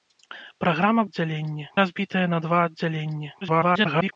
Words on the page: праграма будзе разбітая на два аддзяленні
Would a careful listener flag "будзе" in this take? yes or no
yes